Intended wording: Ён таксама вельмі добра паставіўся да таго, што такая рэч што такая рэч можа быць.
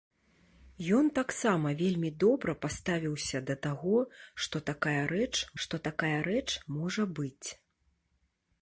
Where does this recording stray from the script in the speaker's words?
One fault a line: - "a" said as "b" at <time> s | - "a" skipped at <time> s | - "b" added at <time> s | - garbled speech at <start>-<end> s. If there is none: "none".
none